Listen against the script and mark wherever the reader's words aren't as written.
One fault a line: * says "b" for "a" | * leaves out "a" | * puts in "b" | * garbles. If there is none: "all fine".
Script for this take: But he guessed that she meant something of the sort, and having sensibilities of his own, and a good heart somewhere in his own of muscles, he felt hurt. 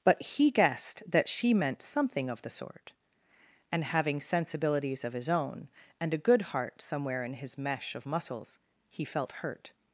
* says "mesh" for "own"